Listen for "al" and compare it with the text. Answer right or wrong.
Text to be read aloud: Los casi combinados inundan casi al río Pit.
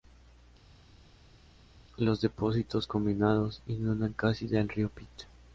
wrong